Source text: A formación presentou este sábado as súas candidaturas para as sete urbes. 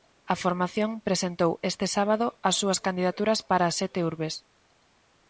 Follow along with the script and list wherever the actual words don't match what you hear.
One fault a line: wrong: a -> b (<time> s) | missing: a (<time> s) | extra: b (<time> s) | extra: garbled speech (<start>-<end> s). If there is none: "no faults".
no faults